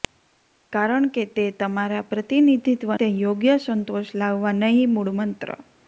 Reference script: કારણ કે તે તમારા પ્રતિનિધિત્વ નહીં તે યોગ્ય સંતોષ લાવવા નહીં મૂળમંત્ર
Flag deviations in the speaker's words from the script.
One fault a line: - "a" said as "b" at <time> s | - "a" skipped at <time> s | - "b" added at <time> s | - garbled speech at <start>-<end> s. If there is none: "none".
- "નહીં" skipped at 2.9 s